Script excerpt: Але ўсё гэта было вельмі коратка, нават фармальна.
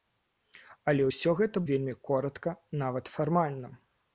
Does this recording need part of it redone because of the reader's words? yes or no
yes